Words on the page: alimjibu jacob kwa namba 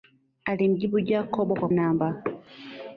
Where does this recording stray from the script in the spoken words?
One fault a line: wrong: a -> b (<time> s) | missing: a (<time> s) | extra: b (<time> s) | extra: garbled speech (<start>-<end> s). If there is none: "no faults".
no faults